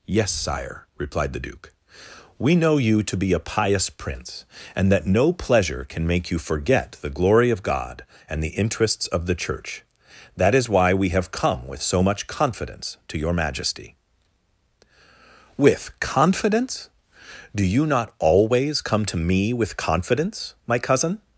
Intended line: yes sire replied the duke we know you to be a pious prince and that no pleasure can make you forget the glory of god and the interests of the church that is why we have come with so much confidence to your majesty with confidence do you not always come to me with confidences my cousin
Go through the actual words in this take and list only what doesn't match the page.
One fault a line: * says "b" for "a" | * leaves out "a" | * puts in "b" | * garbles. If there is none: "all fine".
* says "confidence" for "confidences"